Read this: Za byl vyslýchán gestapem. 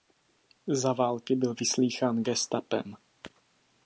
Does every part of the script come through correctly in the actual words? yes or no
no